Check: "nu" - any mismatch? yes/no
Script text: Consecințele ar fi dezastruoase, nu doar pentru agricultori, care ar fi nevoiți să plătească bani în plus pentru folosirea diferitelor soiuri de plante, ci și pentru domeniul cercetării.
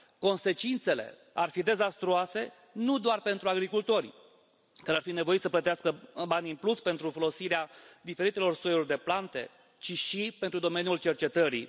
no